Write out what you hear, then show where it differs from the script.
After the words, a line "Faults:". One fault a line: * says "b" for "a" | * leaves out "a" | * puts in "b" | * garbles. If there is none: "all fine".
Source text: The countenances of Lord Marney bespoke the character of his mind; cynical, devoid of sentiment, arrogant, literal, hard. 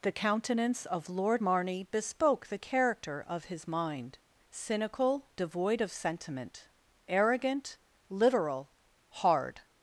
The countenance of Lord Marney bespoke the character of his mind; cynical, devoid of sentiment, arrogant, literal, hard.
Faults:
* says "countenance" for "countenances"